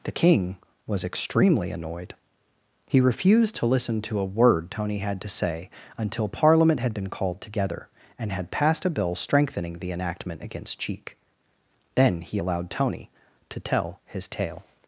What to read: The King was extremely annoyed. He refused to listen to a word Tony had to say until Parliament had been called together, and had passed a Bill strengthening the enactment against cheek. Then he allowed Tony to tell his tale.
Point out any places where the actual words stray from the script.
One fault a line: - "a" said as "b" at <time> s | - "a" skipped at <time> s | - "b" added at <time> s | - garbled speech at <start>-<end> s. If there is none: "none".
none